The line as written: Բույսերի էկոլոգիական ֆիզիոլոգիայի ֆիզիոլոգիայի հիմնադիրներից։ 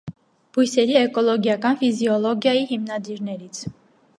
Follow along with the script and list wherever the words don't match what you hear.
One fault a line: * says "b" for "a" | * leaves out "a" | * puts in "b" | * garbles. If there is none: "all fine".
* leaves out "ֆիզիոլոգիայի"